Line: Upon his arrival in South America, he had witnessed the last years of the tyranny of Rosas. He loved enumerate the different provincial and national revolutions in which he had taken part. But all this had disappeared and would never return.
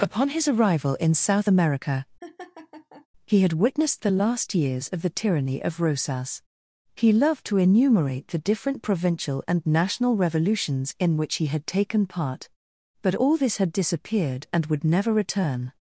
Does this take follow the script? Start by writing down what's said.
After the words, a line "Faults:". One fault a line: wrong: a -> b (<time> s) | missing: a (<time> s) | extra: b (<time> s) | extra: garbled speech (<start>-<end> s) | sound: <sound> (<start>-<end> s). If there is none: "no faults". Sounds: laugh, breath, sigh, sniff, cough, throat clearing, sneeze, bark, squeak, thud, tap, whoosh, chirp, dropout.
Upon his arrival in South America, he had witnessed the last years of the tyranny of Rosas. He loved to enumerate the different provincial and national revolutions in which he had taken part. But all this had disappeared and would never return.
Faults:
sound: laugh (2.2-3.1 s)
extra: to (7.5 s)